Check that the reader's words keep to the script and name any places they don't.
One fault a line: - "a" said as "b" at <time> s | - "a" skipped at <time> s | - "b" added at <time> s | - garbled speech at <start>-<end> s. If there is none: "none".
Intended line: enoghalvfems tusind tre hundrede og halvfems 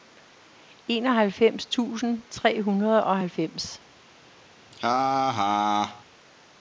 none